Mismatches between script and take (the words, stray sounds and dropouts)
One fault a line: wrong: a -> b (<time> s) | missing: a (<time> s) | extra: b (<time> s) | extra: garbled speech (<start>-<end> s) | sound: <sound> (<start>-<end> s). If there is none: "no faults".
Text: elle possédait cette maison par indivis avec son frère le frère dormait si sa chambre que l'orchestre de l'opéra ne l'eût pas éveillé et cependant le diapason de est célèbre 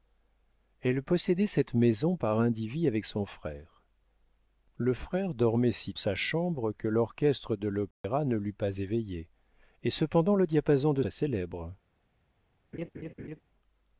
sound: dropout (7.9-8.0 s)
sound: laugh (12.7-13.4 s)